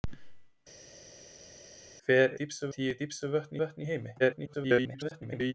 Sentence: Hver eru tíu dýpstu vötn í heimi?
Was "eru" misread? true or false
true